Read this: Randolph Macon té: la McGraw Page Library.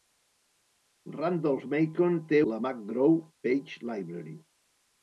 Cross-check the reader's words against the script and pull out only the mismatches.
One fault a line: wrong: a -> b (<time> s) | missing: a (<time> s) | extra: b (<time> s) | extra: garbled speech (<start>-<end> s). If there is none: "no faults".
no faults